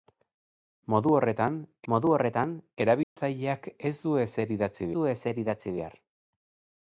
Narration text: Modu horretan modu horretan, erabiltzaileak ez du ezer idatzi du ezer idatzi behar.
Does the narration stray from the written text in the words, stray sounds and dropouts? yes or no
yes